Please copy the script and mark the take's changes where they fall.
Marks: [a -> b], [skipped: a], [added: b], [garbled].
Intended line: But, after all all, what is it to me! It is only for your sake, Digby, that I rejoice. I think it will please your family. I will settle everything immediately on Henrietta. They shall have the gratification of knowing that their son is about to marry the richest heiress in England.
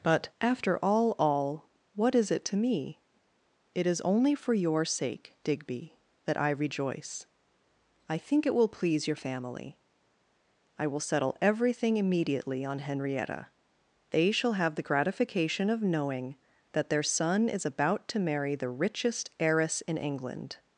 But, after all all, what is it to me! It is only for your sake, Digby, that I rejoice. I think it will please your family. I will settle everything immediately on Henrietta. They shall have the gratification of knowing that their son is about to marry the richest heiress in England.